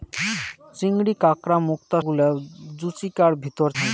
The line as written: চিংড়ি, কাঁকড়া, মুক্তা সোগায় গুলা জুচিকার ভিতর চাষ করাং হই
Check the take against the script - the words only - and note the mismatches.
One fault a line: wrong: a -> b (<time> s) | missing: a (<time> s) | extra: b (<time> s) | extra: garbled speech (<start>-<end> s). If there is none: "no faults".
missing: সোগায় (2.0 s)
missing: চাষ করাং (3.7 s)